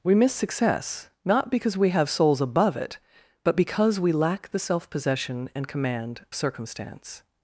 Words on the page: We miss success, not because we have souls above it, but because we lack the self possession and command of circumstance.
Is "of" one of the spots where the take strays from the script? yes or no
yes